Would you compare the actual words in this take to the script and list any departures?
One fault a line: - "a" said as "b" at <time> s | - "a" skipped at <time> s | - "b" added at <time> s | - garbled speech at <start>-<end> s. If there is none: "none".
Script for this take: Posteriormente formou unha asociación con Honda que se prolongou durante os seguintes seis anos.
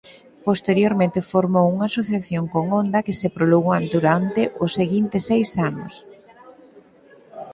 none